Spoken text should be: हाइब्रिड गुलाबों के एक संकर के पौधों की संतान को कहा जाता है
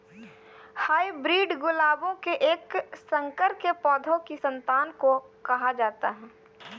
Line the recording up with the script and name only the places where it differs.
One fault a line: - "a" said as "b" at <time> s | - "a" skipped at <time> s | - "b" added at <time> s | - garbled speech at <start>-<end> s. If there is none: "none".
none